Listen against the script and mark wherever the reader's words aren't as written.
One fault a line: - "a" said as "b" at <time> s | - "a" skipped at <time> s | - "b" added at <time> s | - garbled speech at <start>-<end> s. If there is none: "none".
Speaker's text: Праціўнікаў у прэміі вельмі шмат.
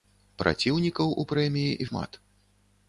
- "вельмі" skipped at 1.8 s